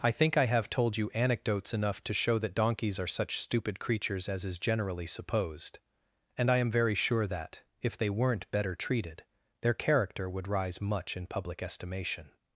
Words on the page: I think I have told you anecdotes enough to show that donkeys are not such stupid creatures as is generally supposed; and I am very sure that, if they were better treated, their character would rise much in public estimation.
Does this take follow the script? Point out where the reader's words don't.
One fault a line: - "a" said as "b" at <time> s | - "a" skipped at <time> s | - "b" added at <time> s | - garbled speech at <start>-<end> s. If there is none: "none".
- "not" skipped at 3.0 s
- "were" said as "weren't" at 8.1 s